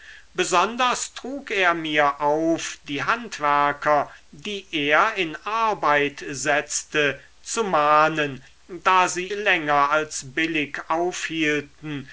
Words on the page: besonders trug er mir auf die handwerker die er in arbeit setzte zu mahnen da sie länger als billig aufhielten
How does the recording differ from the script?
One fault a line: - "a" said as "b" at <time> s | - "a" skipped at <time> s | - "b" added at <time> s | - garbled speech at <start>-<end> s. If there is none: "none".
none